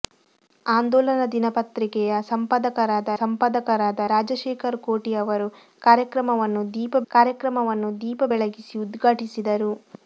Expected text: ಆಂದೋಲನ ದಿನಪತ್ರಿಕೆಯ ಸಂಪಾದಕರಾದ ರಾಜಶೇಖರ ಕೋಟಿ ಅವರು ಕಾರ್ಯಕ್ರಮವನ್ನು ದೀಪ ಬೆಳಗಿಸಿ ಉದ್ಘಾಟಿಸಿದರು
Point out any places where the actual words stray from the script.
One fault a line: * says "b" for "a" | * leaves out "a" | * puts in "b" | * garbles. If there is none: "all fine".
* puts in "ಸಂಪಾದಕರಾದ"
* puts in "ಕಾರ್ಯಕ್ರಮವನ್ನು ದೀಪ"